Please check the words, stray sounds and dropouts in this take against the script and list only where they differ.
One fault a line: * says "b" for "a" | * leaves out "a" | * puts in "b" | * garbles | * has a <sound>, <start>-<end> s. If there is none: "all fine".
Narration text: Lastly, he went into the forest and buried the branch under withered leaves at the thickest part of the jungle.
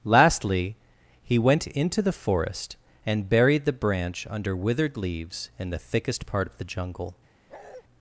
* says "in" for "at"
* has a bark, 7.5-7.8 s